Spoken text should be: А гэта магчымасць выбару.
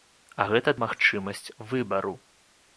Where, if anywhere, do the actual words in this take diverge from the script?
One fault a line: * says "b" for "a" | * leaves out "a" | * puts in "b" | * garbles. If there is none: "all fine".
all fine